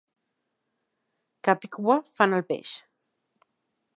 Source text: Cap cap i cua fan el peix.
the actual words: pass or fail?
fail